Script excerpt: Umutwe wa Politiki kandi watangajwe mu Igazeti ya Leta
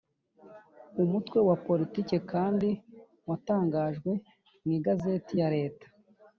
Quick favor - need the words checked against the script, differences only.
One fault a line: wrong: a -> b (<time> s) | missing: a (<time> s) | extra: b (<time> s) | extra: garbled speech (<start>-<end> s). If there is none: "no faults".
no faults